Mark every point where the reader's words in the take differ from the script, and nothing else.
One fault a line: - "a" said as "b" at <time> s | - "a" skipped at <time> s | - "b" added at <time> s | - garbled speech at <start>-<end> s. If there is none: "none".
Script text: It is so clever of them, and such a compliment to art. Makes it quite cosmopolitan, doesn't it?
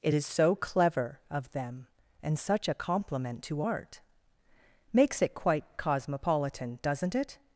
none